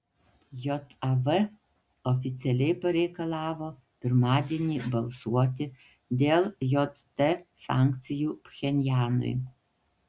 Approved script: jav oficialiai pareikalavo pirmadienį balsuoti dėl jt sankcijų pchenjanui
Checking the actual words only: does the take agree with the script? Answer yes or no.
yes